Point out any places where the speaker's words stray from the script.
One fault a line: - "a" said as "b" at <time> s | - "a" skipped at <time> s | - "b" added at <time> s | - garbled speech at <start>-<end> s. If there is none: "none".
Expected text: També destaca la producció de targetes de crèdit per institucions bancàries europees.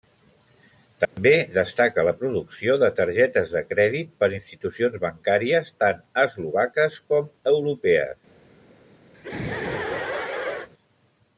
- "tant eslovaques com" added at 5.8 s